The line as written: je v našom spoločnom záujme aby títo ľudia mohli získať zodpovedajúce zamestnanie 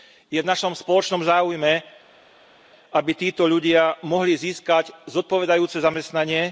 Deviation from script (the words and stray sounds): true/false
false